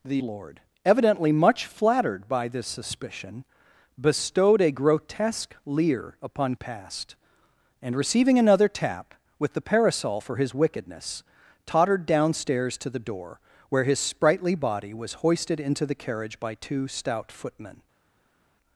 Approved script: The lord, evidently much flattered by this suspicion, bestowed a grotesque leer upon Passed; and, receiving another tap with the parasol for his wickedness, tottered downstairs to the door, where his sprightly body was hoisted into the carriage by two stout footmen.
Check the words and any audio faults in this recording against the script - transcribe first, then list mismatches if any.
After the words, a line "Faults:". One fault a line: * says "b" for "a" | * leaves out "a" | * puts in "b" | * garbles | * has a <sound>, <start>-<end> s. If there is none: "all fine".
The lord, evidently much flattered by this suspicion, bestowed a grotesque leer upon Passed; and, receiving another tap with the parasol for his wickedness, tottered downstairs to the door, where his sprightly body was hoisted into the carriage by two stout footmen.
Faults:
all fine